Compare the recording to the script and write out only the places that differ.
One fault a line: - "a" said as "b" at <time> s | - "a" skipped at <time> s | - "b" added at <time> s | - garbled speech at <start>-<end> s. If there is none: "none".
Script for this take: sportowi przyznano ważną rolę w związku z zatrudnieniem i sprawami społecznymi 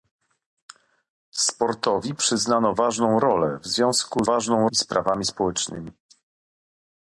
- "zatrudnieniem" said as "ważną" at 4.2 s